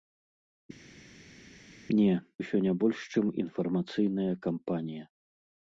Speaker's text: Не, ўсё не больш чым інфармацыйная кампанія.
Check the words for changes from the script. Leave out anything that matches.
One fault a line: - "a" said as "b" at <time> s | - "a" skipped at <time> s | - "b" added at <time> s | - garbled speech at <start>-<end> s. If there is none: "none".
none